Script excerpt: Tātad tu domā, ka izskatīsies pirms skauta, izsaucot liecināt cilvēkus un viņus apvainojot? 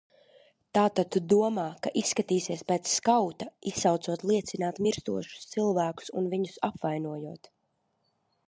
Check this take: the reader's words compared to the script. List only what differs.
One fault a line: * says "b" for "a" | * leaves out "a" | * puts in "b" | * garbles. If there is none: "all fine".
* says "pēc" for "pirms"
* puts in "mirstošus"